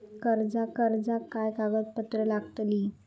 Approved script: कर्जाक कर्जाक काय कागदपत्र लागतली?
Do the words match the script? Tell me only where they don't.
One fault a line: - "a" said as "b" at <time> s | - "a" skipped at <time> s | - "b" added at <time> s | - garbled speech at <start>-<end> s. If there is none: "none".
none